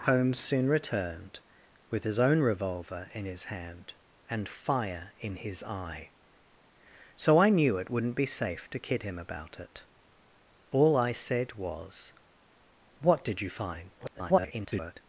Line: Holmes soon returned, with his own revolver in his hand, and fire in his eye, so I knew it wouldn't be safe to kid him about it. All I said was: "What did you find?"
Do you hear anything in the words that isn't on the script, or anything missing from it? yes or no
yes